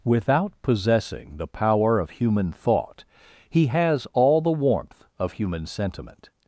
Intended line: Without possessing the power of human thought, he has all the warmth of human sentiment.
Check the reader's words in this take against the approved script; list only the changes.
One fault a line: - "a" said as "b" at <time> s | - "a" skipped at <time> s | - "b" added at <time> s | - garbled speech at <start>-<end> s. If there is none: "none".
none